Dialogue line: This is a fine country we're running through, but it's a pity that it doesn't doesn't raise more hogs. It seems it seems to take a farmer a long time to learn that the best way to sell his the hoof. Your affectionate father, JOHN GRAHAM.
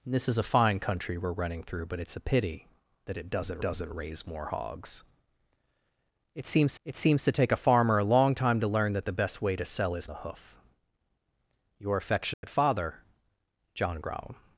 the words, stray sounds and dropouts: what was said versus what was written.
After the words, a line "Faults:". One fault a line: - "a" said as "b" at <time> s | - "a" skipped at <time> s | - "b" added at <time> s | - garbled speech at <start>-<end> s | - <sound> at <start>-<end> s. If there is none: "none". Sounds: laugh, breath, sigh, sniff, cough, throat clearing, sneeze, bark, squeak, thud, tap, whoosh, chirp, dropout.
This is a fine country we're running through, but it's a pity that it doesn't doesn't raise more hogs. It seems it seems to take a farmer a long time to learn that the best way to sell his the hoof. Your affectionate father, JOHN GRAHAM.
Faults:
- dropout at 12.3-12.4 s